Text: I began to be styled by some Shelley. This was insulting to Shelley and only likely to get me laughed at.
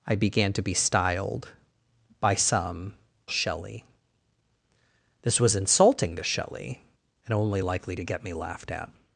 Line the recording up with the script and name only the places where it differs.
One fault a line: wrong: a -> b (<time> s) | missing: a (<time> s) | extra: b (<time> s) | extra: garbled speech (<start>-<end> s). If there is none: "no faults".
no faults